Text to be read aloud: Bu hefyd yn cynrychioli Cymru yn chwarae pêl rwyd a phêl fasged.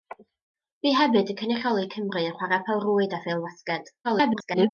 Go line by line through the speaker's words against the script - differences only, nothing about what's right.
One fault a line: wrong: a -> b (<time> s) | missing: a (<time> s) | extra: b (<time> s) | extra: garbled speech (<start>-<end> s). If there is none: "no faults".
extra: garbled speech (4.0-4.7 s)